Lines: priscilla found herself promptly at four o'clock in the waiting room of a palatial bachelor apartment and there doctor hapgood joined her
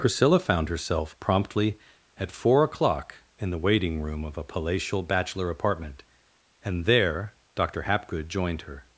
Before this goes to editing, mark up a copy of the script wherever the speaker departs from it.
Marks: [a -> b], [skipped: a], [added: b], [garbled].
priscilla found herself promptly at four o'clock in the waiting room of a palatial bachelor apartment and there doctor hapgood joined her